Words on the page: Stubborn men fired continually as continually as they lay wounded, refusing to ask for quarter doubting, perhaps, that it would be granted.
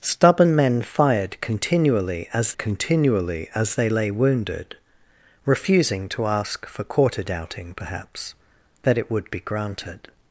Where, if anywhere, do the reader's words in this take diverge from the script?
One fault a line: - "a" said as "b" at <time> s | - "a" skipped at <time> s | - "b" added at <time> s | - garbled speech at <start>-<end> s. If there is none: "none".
none